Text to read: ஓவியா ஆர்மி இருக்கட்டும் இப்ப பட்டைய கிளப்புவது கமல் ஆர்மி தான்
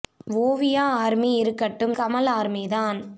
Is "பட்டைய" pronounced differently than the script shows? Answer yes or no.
yes